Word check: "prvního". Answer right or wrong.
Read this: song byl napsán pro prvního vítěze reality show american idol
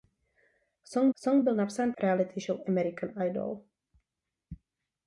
wrong